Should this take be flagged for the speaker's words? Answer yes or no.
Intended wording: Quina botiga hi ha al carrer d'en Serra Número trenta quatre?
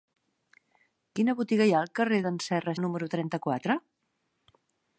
no